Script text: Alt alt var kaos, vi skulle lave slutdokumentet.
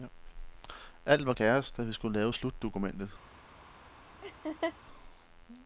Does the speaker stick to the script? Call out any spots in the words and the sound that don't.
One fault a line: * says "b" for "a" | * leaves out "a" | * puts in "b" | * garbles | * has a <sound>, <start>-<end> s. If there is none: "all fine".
* leaves out "alt"
* puts in "da"
* has a laugh, 4.2-4.7 s